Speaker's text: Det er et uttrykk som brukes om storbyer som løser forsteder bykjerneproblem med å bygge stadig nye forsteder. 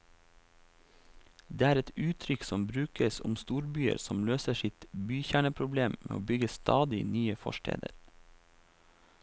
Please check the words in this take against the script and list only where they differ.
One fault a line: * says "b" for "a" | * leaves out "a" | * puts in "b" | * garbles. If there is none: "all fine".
* says "sitt" for "forsteder"